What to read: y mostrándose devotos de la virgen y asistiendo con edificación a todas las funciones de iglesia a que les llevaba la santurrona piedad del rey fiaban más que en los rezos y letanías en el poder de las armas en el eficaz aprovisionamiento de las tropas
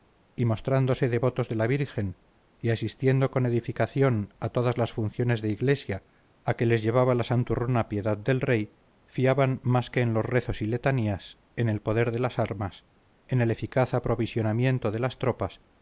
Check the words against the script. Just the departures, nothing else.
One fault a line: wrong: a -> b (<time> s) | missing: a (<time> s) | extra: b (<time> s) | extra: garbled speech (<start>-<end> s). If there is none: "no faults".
no faults